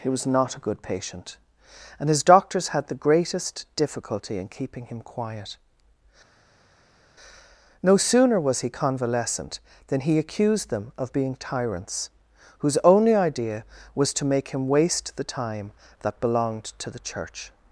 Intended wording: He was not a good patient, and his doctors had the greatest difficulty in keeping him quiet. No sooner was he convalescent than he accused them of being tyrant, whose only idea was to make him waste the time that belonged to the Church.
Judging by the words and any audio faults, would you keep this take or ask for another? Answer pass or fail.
fail